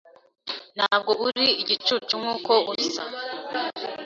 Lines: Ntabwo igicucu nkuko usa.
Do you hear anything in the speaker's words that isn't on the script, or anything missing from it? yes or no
yes